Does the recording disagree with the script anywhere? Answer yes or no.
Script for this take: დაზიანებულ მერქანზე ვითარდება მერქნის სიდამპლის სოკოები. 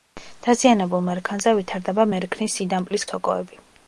no